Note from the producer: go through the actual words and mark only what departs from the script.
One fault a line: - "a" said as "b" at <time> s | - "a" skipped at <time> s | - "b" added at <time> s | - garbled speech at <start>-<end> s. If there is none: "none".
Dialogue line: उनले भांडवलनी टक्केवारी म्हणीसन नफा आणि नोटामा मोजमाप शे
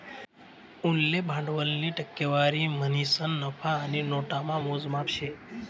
none